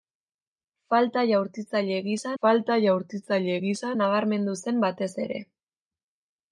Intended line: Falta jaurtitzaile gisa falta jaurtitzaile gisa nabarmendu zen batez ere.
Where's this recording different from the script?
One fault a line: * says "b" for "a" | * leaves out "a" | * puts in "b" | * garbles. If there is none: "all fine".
all fine